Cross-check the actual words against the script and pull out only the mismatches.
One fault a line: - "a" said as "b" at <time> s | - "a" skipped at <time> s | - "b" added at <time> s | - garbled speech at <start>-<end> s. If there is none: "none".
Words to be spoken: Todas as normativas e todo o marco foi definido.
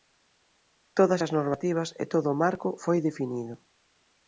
none